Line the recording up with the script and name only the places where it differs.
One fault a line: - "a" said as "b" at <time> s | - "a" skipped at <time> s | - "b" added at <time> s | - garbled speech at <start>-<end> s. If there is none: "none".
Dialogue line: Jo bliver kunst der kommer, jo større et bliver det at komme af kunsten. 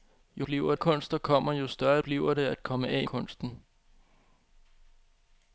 none